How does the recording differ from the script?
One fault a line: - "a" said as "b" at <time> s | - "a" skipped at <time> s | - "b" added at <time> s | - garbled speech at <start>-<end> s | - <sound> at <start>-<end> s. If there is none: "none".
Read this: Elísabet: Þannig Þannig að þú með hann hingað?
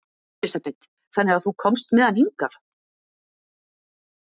- "Þannig" skipped at 1.4 s
- "komst" added at 1.7 s